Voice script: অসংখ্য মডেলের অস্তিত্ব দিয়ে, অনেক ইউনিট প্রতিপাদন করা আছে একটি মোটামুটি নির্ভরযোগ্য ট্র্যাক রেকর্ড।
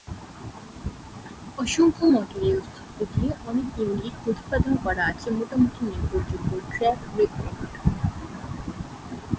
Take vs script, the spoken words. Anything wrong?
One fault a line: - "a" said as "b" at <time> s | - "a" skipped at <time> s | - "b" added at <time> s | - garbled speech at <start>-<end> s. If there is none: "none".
- "একটি" skipped at 5.3 s